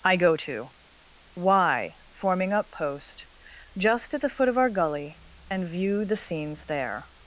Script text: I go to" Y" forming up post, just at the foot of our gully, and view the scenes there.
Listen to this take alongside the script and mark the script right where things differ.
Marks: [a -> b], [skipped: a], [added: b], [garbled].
I go to" Y" forming up post, just at the foot of our gully, and view the scenes there.